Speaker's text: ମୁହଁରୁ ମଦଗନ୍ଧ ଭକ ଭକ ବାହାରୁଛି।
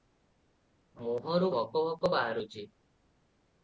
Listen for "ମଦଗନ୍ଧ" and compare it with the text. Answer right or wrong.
wrong